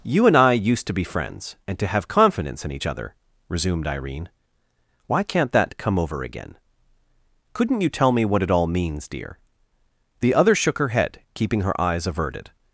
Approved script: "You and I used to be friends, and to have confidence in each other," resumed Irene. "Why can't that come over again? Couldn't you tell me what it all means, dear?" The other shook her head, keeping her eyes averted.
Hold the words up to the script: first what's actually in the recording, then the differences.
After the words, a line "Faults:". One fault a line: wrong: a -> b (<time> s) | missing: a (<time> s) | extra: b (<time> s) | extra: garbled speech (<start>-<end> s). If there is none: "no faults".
"You and I used to be friends, and to have confidence in each other," resumed Irene. "Why can't that come over again? Couldn't you tell me what it all means, dear?" The other shook her head, keeping her eyes averted.
Faults:
no faults